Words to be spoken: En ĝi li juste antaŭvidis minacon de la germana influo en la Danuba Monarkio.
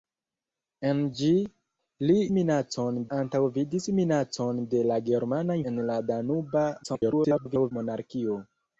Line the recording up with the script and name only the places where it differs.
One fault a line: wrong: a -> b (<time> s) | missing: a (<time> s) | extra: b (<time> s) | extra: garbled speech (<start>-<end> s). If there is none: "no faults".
wrong: juste -> minacon (2.3 s)
missing: influo (5.6 s)
extra: garbled speech (6.8-7.7 s)